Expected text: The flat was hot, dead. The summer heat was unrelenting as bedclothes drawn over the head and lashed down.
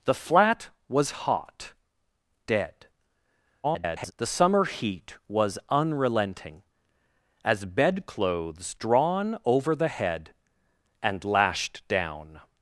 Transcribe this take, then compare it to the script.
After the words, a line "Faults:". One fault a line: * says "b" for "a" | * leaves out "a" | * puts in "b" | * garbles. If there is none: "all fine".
The flat was hot, dead. [garbled] The summer heat was unrelenting as bedclothes drawn over the head and lashed down.
Faults:
* garbles